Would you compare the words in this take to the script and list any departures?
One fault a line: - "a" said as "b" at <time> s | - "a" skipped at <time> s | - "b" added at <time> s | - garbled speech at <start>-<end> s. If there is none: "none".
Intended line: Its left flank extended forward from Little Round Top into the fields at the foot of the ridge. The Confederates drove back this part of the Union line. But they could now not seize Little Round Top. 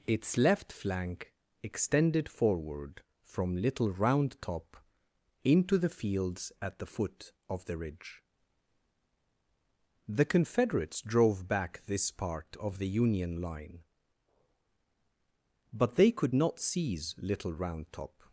- "now" skipped at 16.4 s